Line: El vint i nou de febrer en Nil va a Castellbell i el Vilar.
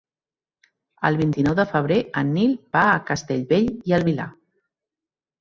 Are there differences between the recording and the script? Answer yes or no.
no